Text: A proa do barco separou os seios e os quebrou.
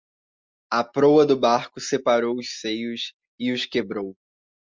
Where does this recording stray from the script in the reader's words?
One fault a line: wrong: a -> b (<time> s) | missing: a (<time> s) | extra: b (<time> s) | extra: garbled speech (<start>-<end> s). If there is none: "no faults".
no faults